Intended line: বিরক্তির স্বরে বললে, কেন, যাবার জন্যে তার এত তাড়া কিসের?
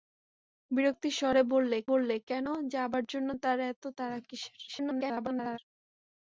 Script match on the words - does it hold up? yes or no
no